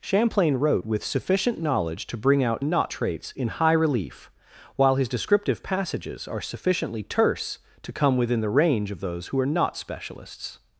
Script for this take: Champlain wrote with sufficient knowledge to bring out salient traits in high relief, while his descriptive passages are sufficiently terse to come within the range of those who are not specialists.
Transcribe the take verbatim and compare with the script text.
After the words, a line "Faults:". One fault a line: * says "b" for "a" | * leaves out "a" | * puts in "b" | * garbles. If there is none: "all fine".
Champlain wrote with sufficient knowledge to bring out not traits in high relief, while his descriptive passages are sufficiently terse to come within the range of those who are not specialists.
Faults:
* says "not" for "salient"